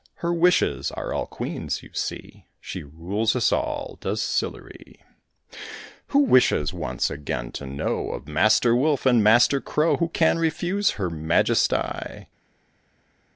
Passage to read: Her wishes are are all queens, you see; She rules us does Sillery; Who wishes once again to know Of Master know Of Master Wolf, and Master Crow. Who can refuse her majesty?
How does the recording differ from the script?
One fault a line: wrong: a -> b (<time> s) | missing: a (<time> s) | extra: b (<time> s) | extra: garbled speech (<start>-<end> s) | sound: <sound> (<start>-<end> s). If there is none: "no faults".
missing: are (1.1 s)
extra: all (3.5 s)
missing: know Of Master (8.8 s)